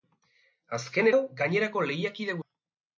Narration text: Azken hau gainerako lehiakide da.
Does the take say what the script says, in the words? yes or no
yes